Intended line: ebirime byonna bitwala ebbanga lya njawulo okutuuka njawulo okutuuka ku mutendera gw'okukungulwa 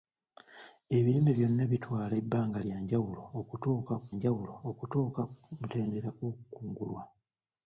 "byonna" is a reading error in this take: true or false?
false